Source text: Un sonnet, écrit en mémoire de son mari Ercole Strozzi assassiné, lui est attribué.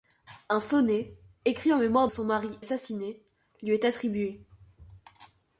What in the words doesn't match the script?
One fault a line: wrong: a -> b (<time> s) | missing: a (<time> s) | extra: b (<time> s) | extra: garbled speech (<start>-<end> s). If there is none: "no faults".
missing: de (2.1 s)
missing: Ercole Strozzi (2.6 s)